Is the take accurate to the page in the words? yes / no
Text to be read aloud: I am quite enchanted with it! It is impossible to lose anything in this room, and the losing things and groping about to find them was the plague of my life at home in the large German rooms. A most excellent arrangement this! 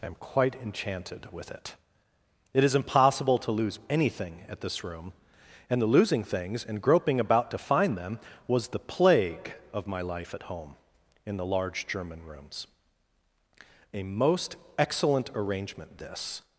no